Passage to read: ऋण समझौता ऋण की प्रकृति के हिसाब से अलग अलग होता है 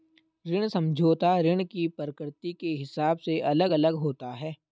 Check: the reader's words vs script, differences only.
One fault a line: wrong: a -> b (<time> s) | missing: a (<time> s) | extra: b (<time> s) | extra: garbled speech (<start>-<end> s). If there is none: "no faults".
no faults